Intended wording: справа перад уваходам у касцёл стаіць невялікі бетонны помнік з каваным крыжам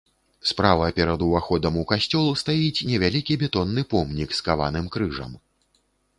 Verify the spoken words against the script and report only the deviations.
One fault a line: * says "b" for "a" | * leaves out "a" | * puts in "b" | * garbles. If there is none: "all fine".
all fine